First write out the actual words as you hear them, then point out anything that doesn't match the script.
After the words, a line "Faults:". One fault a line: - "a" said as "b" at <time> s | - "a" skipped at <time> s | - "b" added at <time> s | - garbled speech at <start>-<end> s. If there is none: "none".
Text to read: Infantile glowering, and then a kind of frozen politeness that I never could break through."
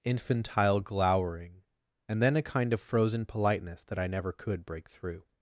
Infantile glowering, and then a kind of frozen politeness that I never could break through."
Faults:
none